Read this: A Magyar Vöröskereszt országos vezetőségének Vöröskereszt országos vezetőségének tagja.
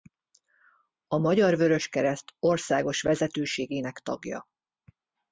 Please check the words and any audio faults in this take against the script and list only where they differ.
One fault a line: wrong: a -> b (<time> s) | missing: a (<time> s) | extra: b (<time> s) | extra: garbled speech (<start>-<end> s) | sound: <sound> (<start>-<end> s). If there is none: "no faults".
missing: Vöröskereszt országos vezetőségének (4.0 s)